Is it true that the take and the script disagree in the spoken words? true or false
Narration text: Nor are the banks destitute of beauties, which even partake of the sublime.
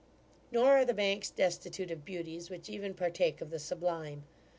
false